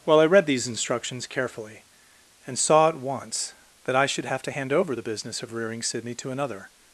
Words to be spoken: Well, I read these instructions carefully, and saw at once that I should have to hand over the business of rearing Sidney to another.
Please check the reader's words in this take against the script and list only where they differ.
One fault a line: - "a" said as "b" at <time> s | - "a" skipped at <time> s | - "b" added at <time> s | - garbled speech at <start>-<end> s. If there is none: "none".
none